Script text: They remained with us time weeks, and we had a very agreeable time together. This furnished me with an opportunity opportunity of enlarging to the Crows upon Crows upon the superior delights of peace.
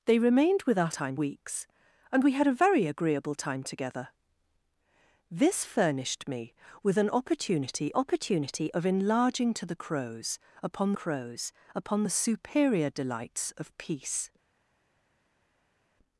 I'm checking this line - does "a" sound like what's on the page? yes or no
yes